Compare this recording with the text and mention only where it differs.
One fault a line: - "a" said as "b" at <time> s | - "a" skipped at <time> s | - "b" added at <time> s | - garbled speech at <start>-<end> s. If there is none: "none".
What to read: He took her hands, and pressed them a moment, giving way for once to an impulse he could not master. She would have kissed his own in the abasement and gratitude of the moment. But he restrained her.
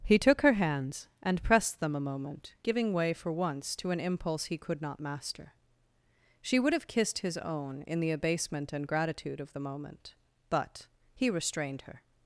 none